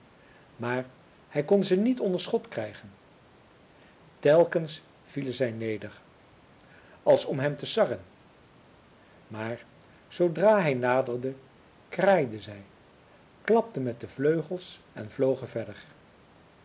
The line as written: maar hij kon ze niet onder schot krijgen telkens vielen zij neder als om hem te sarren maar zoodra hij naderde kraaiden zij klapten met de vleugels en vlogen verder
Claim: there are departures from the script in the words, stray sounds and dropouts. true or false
false